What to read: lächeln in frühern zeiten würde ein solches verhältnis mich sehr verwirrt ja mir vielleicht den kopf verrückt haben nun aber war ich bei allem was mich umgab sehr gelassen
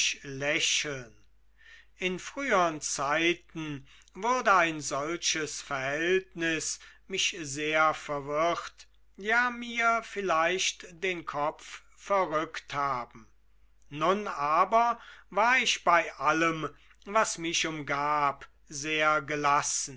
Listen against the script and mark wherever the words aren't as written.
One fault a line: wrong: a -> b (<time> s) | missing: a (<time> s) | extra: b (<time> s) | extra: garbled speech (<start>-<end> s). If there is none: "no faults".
no faults